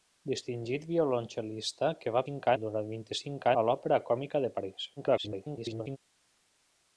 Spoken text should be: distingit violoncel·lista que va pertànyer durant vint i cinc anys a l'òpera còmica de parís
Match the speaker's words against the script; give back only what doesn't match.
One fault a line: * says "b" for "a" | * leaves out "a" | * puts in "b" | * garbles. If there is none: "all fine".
* says "cinc" for "pertànyer"
* leaves out "anys"
* garbles